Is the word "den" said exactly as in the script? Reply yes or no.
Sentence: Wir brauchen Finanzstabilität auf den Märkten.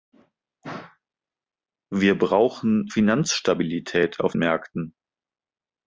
no